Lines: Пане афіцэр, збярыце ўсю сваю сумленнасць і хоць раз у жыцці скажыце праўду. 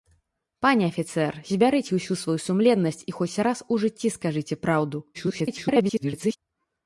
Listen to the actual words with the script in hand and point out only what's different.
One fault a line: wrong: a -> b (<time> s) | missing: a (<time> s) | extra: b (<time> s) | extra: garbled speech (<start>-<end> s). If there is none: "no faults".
extra: garbled speech (5.1-6.4 s)